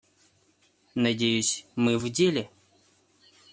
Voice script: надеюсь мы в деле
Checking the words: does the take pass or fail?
pass